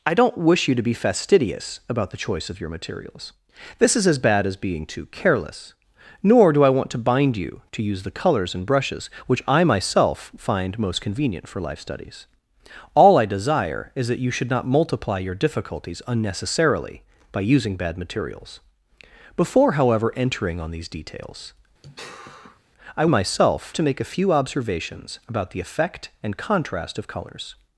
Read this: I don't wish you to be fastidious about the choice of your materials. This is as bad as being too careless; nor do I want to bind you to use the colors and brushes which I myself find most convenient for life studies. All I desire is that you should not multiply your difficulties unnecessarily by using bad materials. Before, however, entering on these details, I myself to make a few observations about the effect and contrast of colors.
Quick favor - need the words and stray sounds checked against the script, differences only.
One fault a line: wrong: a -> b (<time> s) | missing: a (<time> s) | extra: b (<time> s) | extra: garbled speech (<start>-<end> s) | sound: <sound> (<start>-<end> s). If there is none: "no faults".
sound: sigh (21.8-22.6 s)